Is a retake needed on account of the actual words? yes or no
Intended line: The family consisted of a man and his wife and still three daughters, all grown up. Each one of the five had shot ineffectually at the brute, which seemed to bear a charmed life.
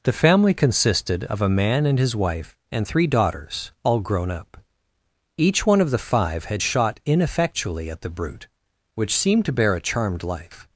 yes